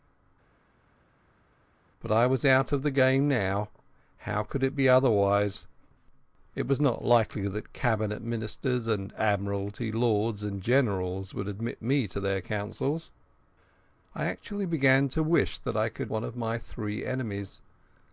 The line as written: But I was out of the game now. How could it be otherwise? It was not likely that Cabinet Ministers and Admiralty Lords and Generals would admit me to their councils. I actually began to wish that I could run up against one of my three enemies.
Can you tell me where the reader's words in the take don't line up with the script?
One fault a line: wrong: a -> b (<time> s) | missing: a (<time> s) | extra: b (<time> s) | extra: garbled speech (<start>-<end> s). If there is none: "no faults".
missing: run up against (16.1 s)